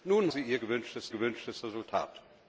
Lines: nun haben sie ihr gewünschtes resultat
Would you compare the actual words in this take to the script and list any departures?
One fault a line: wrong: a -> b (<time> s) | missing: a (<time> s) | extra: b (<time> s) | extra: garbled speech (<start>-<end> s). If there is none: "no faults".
missing: haben (0.3 s)
extra: gewünschtes (1.1 s)